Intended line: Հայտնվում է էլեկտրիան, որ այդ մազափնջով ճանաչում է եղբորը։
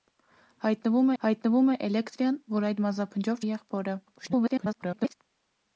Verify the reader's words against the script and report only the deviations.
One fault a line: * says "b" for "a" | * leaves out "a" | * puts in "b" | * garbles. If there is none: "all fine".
* puts in "հայտնվում"
* leaves out "ճանաչում"
* garbles